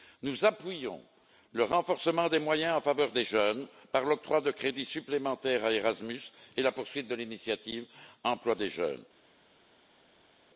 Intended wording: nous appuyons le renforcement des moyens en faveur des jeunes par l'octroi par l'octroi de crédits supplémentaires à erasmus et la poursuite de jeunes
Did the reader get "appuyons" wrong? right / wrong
right